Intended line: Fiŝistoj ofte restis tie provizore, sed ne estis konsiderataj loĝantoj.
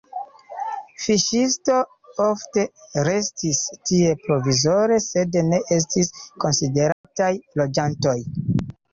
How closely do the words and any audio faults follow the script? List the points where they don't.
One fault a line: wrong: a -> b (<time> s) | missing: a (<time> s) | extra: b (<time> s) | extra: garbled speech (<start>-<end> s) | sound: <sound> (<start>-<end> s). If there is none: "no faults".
sound: dropout (6.9-7.0 s)